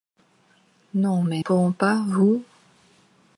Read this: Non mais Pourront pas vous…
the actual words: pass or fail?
pass